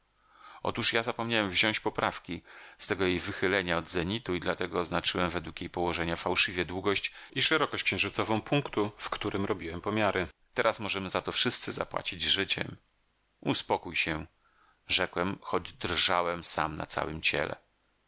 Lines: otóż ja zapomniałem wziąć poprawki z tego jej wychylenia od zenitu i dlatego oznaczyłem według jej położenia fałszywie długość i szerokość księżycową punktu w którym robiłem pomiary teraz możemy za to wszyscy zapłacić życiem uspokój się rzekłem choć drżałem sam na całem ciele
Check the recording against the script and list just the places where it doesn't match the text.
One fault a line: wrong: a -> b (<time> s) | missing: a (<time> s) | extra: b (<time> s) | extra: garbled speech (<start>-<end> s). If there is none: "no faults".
no faults